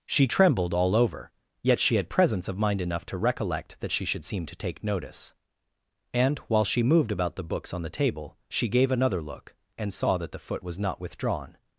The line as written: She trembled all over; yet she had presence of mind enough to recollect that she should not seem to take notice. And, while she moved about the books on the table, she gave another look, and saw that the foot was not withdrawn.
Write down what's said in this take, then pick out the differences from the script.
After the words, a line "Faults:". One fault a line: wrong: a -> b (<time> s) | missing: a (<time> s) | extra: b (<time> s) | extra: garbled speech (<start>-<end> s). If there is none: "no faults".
She trembled all over; yet she had presence of mind enough to recollect that she should seem to take notice. And, while she moved about the books on the table, she gave another look, and saw that the foot was not withdrawn.
Faults:
missing: not (4.2 s)